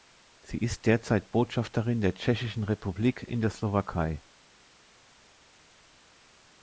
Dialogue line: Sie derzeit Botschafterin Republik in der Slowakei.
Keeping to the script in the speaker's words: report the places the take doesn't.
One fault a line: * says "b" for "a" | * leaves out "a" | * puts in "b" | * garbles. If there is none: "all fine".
* puts in "ist"
* puts in "der Tschechischen"